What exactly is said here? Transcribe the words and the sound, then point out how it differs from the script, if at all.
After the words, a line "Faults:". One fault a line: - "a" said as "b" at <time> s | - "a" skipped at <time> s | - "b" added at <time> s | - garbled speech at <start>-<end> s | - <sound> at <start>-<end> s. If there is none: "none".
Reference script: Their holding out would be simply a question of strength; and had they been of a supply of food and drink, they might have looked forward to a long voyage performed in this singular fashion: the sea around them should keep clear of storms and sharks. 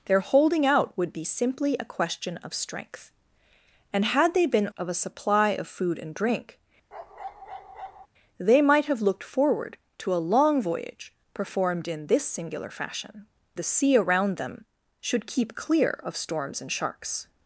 Their holding out would be simply a question of strength; and had they been of a supply of food and drink, they might have looked forward to a long voyage performed in this singular fashion: the sea around them should keep clear of storms and sharks.
Faults:
- bark at 6.9-8.1 s